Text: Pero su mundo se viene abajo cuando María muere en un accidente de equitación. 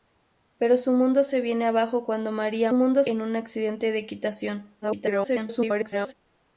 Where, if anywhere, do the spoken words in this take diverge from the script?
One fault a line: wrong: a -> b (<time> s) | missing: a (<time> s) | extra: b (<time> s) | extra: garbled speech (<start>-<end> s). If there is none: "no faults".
wrong: muere -> mundo (2.7 s)
extra: garbled speech (4.8-6.1 s)